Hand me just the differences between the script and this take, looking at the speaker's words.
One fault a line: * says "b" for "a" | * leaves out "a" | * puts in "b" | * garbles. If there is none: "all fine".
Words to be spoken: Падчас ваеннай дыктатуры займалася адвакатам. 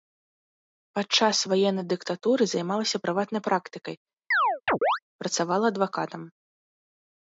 * puts in "прыватнай практыкай працавала"